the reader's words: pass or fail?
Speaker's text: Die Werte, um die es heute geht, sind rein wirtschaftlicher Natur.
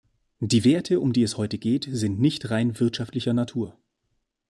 fail